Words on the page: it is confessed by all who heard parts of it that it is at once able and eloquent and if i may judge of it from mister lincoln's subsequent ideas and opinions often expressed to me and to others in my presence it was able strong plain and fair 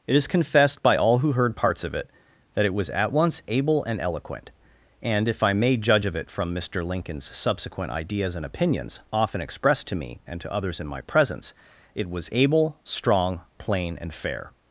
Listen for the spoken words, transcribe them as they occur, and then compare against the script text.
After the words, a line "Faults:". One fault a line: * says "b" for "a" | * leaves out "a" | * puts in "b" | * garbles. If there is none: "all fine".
it is confessed by all who heard parts of it that it was at once able and eloquent and if i may judge of it from mister lincoln's subsequent ideas and opinions often expressed to me and to others in my presence it was able strong plain and fair
Faults:
* says "was" for "is"